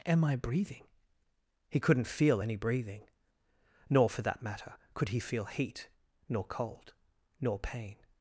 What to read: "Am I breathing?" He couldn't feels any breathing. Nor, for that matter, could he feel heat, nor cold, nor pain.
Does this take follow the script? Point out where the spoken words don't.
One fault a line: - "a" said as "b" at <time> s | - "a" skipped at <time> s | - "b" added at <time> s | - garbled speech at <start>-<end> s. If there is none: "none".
- "feels" said as "feel" at 2.1 s